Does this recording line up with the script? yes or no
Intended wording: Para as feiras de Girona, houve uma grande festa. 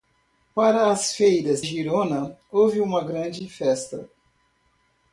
no